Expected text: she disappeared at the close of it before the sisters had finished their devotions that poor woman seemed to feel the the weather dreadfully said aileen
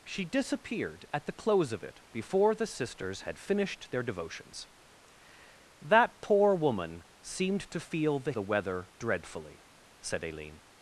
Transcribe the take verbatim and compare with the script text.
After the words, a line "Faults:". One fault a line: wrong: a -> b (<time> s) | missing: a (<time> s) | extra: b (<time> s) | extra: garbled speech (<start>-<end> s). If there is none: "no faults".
she disappeared at the close of it before the sisters had finished their devotions that poor woman seemed to feel the the weather dreadfully said aileen
Faults:
no faults